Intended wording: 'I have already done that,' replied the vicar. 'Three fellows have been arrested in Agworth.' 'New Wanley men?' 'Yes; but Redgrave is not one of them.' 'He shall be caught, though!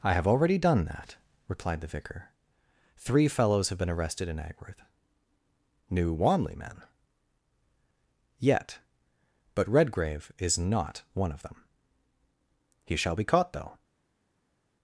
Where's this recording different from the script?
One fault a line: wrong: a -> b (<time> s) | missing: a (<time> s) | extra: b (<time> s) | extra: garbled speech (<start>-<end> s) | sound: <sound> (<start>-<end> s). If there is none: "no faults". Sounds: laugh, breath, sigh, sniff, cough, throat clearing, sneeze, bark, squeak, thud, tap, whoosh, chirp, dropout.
wrong: Yes -> Yet (8.4 s)